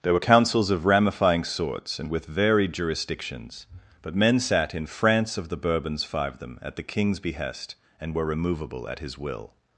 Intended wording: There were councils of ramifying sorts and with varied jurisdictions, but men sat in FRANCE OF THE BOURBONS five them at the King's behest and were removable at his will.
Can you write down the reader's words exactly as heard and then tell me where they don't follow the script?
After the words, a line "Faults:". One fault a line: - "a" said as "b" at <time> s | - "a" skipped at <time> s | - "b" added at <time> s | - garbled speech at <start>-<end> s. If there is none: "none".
There were councils of ramifying sorts and with varied jurisdictions, but men sat in FRANCE OF THE BOURBONS five them at the King's behest and were removable at his will.
Faults:
none